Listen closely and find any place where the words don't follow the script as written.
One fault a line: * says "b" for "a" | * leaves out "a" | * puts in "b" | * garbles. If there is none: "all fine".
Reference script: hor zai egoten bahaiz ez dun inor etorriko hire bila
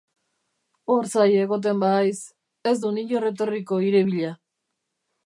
all fine